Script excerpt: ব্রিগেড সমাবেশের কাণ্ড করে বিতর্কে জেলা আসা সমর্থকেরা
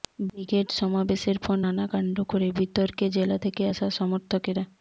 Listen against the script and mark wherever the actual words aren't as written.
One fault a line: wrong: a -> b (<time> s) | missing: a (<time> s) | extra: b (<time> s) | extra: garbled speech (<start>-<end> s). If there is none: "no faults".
extra: পর নানা (1.4 s)
extra: থেকে (3.4 s)